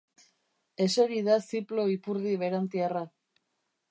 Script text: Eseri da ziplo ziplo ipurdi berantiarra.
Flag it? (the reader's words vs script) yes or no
yes